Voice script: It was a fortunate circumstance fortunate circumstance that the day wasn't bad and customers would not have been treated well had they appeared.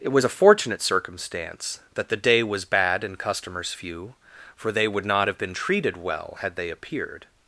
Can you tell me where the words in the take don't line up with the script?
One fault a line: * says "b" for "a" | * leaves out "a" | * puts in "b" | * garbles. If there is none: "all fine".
* leaves out "fortunate circumstance"
* says "was" for "wasn't"
* puts in "few for they"